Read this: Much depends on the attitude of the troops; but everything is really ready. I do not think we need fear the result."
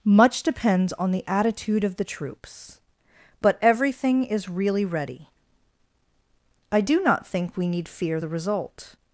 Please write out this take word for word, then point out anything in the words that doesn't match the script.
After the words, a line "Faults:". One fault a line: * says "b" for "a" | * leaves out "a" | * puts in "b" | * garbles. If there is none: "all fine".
Much depends on the attitude of the troops; but everything is really ready. I do not think we need fear the result."
Faults:
all fine